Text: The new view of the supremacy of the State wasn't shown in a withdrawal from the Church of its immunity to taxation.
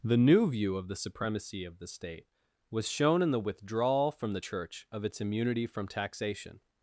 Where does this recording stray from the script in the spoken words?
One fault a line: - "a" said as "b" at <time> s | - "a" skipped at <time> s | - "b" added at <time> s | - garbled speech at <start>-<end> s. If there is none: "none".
- "wasn't" said as "was" at 2.7 s
- "a" said as "the" at 3.3 s
- "to" said as "from" at 5.7 s